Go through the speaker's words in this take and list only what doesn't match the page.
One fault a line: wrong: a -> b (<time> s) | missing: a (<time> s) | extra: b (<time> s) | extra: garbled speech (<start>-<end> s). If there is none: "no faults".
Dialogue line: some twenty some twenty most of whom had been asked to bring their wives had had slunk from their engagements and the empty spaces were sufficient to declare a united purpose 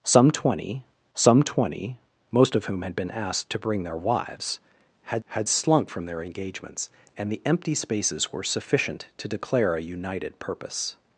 no faults